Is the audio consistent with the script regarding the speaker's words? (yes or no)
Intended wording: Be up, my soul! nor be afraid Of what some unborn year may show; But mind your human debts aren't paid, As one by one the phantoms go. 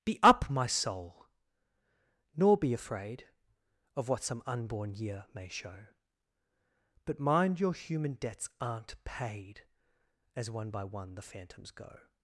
yes